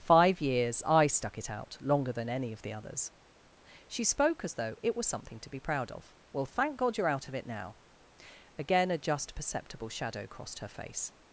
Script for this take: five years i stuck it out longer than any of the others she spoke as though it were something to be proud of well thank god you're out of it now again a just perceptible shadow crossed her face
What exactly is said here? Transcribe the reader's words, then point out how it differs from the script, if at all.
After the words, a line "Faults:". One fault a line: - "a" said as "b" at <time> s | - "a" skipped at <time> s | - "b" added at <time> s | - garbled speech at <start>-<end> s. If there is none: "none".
five years i stuck it out longer than any of the others she spoke as though it was something to be proud of well thank god you're out of it now again a just perceptible shadow crossed her face
Faults:
- "were" said as "was" at 5.0 s